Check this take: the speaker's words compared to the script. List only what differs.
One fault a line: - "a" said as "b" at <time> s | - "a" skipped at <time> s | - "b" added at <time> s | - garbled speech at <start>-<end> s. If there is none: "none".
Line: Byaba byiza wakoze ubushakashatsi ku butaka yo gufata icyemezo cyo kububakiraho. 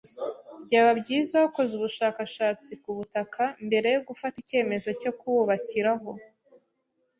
- "mbere" added at 3.6 s